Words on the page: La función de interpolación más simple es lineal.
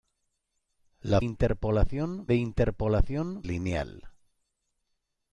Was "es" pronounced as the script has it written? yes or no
no